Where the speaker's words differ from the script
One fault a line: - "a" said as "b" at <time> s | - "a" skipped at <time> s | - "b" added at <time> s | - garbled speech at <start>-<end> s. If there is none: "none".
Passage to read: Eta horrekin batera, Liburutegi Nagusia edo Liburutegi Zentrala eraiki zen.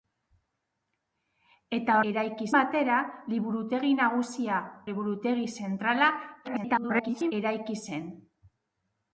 - "horrekin" said as "eraiki" at 2.1 s
- "edo" skipped at 4.6 s
- garbled speech at 6.4-7.3 s